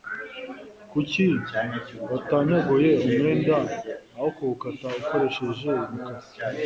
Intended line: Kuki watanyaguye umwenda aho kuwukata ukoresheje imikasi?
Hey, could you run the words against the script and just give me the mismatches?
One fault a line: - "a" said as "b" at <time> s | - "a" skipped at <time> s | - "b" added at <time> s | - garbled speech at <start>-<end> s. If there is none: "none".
none